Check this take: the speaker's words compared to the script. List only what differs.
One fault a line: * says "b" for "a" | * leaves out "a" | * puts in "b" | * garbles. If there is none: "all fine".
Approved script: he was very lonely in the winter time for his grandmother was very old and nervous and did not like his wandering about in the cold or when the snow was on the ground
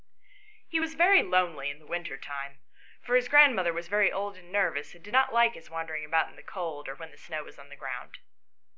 all fine